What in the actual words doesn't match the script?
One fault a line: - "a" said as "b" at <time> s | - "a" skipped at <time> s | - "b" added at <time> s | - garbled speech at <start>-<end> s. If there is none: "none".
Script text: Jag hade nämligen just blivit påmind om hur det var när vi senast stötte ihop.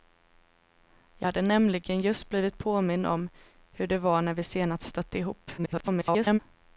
- garbled speech at 5.6-6.4 s